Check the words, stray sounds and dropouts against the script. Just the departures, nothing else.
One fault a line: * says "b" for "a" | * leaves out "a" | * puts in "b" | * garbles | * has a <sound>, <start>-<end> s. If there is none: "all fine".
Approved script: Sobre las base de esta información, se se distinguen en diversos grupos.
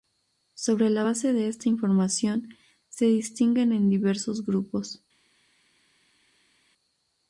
* says "la" for "las"
* leaves out "se"